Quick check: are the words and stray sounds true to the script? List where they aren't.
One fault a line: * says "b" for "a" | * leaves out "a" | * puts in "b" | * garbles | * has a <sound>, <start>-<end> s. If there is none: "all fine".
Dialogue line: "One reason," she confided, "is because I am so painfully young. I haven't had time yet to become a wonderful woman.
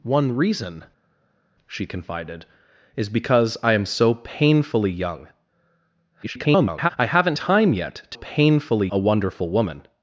* garbles
* leaves out "had"
* says "painfully" for "become"